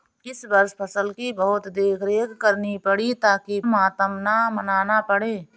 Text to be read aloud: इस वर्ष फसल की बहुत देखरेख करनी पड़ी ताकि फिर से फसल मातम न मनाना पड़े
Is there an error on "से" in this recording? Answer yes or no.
yes